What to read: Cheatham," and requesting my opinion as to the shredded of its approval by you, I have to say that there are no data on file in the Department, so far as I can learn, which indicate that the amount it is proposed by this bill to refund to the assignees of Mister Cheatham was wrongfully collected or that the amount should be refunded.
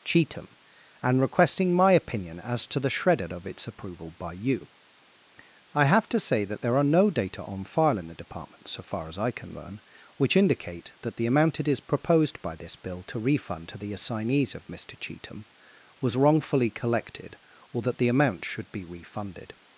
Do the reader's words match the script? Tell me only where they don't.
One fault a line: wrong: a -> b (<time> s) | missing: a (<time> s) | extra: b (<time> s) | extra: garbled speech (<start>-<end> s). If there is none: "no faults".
no faults